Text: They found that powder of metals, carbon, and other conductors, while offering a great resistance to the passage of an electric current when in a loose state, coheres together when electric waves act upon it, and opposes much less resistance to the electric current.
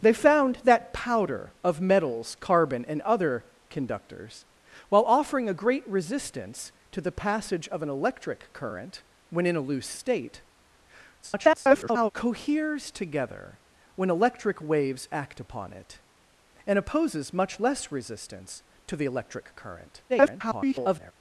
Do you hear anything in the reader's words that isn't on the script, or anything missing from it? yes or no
yes